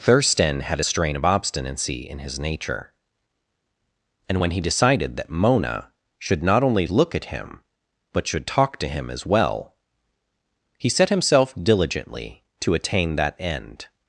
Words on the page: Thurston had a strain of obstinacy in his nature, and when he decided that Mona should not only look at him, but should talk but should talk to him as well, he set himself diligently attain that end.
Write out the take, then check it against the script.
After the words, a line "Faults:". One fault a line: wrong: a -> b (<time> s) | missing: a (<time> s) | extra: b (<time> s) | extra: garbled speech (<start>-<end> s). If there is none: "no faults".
Thurston had a strain of obstinacy in his nature, and when he decided that Mona should not only look at him, but should talk to him as well, he set himself diligently to attain that end.
Faults:
missing: but should talk (8.8 s)
extra: to (12.6 s)